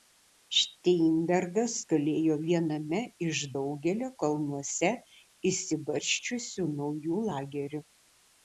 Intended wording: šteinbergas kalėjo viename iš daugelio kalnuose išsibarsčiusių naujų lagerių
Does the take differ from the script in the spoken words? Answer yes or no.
no